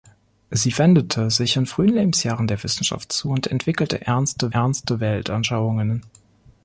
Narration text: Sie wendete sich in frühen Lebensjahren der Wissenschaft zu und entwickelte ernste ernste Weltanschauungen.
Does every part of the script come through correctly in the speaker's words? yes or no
yes